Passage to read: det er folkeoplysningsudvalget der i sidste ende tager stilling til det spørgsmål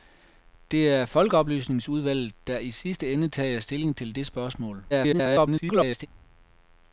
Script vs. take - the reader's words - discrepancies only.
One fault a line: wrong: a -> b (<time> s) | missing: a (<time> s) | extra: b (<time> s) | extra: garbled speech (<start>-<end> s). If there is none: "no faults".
extra: garbled speech (4.9-6.1 s)